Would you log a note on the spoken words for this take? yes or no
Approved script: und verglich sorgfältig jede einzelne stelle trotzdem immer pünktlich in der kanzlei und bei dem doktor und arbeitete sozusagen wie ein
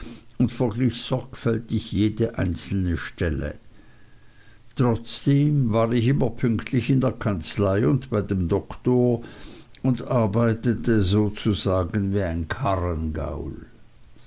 yes